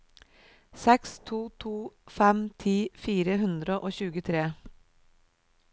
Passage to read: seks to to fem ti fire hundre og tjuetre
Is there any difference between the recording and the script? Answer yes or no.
no